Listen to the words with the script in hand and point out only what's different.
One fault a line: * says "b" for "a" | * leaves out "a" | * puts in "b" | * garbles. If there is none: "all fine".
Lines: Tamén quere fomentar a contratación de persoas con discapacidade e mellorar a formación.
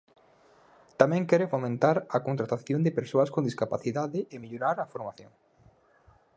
all fine